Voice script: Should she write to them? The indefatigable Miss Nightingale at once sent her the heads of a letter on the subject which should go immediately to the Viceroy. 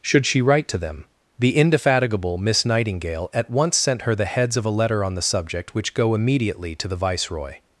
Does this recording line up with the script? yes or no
no